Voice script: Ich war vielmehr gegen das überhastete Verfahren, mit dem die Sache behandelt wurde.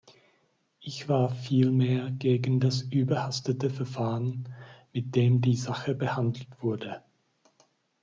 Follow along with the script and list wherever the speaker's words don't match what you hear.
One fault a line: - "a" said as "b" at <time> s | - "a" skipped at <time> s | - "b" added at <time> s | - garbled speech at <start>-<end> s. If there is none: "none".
none